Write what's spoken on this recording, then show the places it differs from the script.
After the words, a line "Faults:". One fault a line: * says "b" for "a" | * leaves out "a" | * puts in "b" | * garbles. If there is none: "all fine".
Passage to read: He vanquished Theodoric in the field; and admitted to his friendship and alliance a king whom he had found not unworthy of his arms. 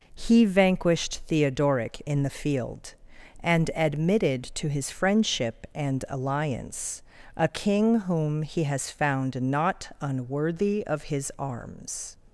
He vanquished Theodoric in the field; and admitted to his friendship and alliance a king whom he has found not unworthy of his arms.
Faults:
* says "has" for "had"